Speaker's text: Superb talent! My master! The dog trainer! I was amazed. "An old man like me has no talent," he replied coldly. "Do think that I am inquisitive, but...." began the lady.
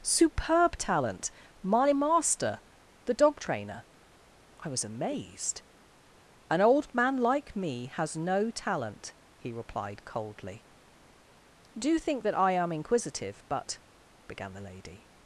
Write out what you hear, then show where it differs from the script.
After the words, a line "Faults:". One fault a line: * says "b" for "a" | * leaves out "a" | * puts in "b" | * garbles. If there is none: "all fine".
Superb talent! My master! The dog trainer! I was amazed. "An old man like me has no talent," he replied coldly. "Do think that I am inquisitive, but...." began the lady.
Faults:
all fine